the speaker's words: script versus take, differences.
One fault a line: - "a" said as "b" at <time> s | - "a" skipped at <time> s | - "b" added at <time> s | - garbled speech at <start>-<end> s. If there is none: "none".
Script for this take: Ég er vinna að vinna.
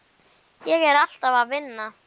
- "vinna" said as "alltaf" at 1.0 s